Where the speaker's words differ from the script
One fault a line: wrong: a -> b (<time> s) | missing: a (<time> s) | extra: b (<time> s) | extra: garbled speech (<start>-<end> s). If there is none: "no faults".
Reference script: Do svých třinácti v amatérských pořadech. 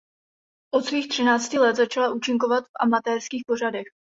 wrong: Do -> Od (0.7 s)
extra: let začala účinkovat (1.6 s)